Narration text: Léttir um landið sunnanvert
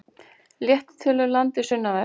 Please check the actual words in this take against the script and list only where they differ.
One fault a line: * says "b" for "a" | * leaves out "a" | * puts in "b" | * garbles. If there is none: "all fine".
* puts in "til"